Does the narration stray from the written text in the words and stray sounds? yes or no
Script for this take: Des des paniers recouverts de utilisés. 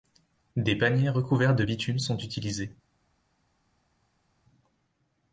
yes